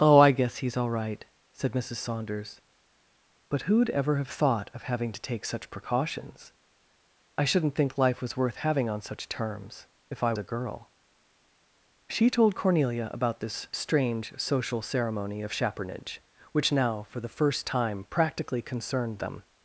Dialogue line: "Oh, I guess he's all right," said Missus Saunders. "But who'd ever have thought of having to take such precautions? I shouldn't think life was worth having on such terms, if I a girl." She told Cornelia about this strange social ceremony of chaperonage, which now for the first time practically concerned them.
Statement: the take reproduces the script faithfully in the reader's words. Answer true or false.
true